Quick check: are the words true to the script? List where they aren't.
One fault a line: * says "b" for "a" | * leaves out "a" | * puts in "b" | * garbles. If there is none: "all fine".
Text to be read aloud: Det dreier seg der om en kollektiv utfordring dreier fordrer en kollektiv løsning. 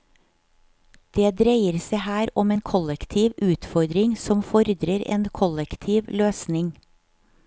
* says "her" for "der"
* says "som" for "dreier"